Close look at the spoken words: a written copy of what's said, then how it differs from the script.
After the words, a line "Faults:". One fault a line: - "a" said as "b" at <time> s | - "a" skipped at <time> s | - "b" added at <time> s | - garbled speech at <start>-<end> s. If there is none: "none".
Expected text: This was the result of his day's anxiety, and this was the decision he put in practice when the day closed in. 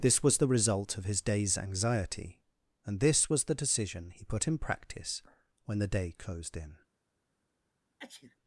This was the result of his day's anxiety, and this was the decision he put in practice when the day closed in.
Faults:
none